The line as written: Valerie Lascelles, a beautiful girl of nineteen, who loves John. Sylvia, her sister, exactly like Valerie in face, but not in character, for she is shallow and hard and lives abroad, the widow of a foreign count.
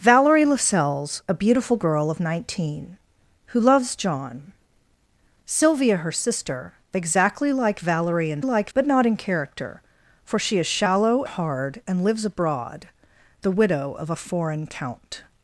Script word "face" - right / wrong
wrong